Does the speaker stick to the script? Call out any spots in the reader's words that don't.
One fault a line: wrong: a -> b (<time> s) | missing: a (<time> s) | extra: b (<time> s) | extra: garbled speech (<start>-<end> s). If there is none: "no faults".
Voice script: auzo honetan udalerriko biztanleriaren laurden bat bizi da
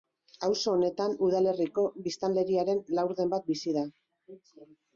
no faults